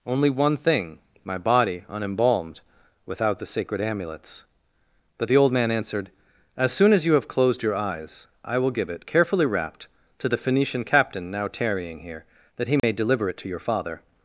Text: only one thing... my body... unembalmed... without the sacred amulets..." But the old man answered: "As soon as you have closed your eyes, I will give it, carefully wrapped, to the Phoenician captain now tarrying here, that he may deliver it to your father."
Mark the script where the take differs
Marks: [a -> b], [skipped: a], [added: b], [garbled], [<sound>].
only one thing... my body... unembalmed... without the sacred amulets..." But the old man answered: "As soon as you have closed your eyes, I will give it, carefully wrapped, to the Phoenician captain now tarrying here, that he may [dropout] deliver it to your father."